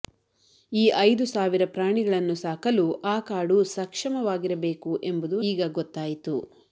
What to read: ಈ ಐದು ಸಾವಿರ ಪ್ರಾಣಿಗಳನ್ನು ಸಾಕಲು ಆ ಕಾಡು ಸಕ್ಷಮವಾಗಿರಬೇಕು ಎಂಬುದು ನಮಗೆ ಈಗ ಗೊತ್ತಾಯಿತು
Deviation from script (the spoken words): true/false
true